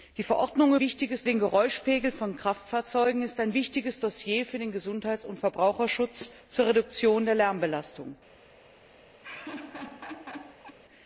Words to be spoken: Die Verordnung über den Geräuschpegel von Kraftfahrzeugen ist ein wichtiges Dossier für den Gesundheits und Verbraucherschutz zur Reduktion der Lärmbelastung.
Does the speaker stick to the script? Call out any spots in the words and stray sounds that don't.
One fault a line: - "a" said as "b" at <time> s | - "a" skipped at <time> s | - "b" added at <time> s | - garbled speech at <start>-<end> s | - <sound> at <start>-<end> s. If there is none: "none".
- "über" said as "wichtiges" at 0.8 s
- laugh at 9.2-10.8 s